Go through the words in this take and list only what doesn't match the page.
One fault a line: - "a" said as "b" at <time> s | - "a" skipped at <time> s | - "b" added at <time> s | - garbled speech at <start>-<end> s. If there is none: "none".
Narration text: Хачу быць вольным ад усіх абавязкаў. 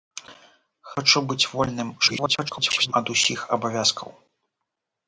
- garbled speech at 2.0-2.9 s